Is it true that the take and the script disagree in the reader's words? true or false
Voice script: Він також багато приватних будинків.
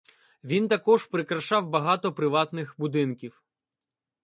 true